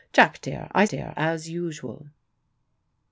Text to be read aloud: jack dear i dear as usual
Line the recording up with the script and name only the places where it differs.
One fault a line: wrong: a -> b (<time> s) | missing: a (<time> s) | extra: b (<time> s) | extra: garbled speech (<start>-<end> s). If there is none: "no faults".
no faults